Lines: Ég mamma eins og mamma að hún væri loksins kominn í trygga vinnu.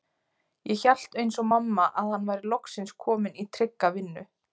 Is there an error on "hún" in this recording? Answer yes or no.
yes